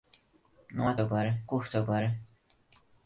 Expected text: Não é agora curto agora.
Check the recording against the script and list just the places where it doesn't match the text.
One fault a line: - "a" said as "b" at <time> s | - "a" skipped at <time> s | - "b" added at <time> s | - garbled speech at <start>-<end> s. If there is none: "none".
none